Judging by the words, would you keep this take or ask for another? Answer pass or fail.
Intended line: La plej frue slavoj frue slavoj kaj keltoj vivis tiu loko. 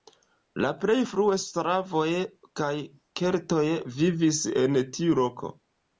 fail